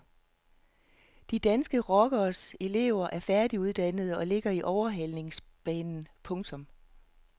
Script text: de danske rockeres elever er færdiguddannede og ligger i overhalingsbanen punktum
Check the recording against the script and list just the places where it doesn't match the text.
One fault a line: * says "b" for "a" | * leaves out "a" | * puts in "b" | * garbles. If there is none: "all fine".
all fine